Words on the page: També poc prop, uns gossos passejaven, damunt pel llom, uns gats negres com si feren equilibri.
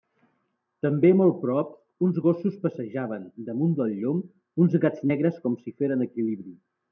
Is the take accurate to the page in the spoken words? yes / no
no